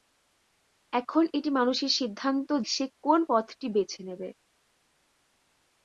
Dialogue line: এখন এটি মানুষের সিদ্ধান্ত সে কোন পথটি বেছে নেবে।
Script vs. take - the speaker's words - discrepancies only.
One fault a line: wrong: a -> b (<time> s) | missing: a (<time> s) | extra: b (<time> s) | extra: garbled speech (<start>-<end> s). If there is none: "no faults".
no faults